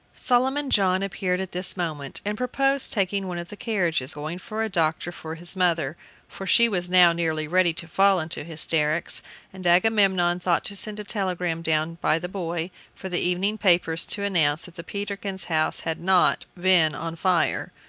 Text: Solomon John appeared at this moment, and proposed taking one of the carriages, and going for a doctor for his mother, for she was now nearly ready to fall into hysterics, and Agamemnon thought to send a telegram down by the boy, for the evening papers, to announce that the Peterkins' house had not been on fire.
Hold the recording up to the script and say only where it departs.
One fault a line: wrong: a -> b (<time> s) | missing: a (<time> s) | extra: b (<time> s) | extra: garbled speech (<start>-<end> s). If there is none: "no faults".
missing: and (4.2 s)